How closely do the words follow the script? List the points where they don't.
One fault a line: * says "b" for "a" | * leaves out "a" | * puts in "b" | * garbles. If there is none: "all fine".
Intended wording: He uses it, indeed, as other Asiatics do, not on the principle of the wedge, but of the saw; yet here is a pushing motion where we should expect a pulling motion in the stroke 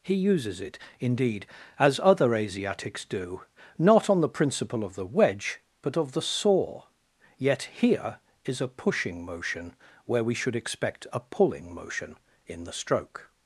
all fine